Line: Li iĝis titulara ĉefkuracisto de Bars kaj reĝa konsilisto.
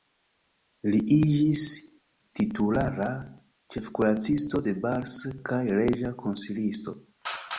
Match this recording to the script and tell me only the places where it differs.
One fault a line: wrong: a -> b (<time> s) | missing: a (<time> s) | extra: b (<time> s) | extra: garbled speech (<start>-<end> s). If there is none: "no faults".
no faults